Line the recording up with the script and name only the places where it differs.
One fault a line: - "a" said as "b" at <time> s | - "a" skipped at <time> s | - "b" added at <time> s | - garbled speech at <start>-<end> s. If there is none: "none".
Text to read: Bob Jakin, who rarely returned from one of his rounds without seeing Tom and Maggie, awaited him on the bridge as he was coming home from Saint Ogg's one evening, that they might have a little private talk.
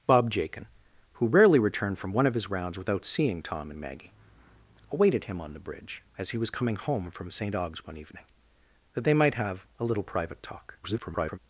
- garbled speech at 10.8-11.4 s